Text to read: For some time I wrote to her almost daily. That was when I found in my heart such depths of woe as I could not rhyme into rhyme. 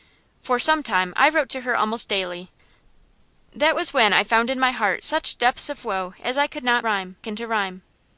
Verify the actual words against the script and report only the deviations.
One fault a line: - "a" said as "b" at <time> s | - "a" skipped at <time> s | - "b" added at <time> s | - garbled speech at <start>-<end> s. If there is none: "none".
none